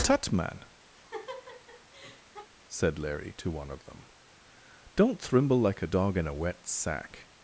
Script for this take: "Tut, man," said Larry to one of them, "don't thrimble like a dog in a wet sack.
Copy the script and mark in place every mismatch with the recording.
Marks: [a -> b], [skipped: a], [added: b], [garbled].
"Tut, man," said Larry to one of them, "don't thrimble like a dog in a wet sack.